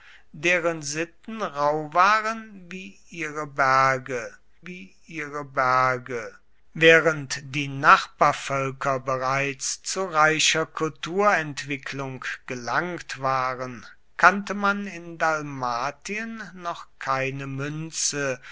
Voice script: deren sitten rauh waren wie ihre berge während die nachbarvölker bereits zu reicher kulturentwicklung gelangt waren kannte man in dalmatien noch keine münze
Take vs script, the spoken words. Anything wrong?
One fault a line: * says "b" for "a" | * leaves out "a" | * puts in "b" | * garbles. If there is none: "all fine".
* puts in "wie ihre berge"